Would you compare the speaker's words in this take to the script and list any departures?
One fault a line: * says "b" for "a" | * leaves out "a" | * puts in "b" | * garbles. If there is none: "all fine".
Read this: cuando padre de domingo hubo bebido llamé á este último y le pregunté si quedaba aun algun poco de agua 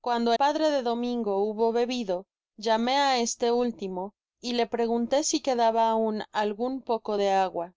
all fine